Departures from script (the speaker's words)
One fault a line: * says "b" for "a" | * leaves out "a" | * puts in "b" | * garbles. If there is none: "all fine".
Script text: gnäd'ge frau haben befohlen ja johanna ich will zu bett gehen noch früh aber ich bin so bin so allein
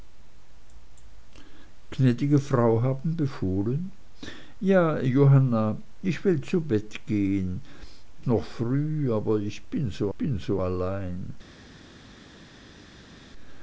all fine